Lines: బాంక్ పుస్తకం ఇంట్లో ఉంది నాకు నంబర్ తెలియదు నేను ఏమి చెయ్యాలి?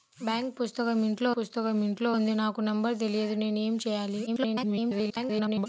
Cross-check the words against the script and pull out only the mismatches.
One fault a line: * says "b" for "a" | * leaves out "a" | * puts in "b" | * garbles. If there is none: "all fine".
* puts in "పుస్తకం ఇంట్లో"
* garbles